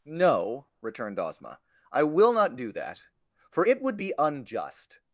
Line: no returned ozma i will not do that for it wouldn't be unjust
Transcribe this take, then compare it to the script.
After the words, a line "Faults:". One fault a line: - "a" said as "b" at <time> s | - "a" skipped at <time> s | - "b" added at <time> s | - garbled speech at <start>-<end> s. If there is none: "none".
no returned ozma i will not do that for it would be unjust
Faults:
- "wouldn't" said as "would" at 3.8 s